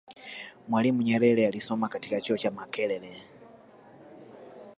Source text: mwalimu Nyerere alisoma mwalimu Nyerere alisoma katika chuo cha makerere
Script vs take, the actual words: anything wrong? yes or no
yes